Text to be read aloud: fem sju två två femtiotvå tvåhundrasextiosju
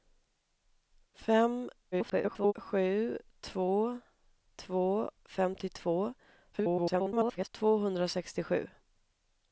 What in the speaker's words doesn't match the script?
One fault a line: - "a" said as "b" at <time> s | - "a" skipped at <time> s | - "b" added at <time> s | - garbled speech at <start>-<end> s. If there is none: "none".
- garbled speech at 1.9-2.5 s
- garbled speech at 6.5-7.5 s